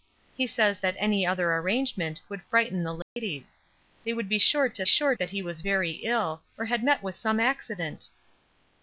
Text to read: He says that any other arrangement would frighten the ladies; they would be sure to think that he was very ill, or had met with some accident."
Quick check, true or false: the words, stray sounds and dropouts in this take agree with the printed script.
false